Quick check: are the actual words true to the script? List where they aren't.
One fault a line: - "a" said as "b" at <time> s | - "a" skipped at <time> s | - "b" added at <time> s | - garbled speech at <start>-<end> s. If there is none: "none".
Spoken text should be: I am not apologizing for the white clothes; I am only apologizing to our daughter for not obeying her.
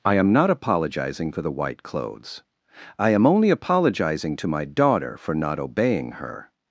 - "our" said as "my" at 4.5 s